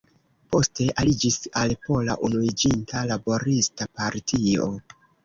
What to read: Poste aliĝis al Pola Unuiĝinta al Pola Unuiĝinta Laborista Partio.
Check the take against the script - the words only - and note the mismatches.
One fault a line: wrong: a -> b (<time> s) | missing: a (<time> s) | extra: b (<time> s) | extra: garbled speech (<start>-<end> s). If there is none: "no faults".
missing: al Pola Unuiĝinta (3.0 s)